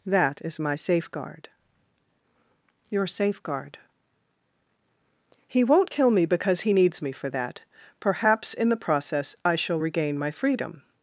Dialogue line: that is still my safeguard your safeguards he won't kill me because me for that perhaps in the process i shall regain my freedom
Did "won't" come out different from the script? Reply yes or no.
no